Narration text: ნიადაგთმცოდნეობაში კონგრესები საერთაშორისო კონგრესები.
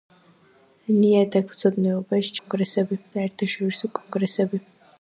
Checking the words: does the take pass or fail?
pass